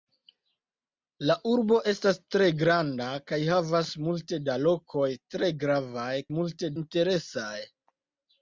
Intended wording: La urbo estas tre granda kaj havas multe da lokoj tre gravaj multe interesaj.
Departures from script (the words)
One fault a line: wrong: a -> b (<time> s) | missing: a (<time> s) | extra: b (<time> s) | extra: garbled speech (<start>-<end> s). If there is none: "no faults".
no faults